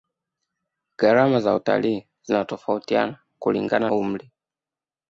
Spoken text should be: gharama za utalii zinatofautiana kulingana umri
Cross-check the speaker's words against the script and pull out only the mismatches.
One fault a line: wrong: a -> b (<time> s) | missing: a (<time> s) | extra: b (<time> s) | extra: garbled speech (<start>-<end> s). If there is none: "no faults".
no faults